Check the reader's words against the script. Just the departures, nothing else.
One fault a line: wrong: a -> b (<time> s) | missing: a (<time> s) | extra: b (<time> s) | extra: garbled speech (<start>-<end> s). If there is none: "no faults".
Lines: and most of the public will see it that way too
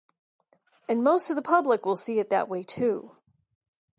no faults